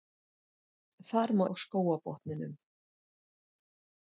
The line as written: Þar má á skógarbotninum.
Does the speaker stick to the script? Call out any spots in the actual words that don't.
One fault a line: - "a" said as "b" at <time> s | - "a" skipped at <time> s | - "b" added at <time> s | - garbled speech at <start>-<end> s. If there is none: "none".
none